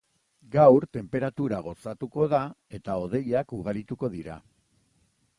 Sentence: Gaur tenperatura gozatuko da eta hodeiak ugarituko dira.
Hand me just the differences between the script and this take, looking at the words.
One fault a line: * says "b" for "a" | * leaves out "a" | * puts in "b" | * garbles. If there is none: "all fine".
all fine